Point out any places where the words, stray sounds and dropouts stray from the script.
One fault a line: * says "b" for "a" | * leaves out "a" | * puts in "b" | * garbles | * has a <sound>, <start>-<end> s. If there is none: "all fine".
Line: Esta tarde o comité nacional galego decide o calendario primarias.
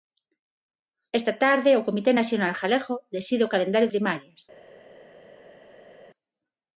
all fine